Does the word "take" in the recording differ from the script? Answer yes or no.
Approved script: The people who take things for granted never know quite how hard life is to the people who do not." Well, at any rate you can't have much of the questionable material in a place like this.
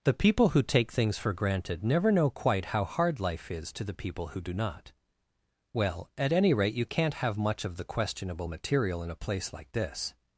no